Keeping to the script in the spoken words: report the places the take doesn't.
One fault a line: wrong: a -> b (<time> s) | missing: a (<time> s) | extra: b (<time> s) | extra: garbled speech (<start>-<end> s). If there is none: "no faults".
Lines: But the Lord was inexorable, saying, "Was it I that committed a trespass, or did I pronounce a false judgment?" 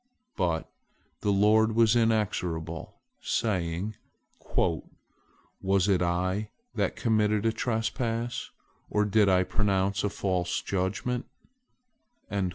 no faults